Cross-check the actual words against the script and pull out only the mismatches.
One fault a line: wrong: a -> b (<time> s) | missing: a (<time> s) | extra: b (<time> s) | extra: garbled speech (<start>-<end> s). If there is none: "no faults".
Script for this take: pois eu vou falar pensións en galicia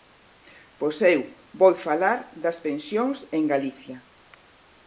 extra: das (2.4 s)